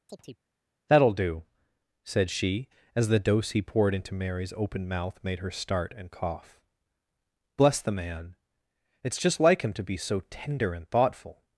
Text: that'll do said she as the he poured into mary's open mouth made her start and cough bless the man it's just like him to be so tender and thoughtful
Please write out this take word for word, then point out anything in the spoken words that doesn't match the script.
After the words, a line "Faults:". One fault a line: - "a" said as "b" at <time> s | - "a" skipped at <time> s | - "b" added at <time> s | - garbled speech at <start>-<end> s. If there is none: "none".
that'll do said she as the dose he poured into mary's open mouth made her start and cough bless the man it's just like him to be so tender and thoughtful
Faults:
- "dose" added at 3.2 s